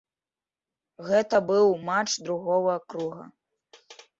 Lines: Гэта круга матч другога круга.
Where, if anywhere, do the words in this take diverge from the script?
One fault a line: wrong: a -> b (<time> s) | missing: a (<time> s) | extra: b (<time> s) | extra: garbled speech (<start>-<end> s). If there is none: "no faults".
wrong: круга -> быў (1.5 s)